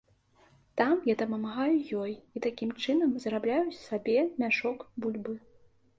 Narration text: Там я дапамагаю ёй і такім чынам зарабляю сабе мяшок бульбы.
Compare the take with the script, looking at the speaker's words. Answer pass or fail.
pass